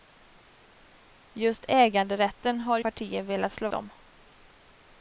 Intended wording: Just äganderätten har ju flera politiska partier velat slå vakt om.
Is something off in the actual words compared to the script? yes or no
yes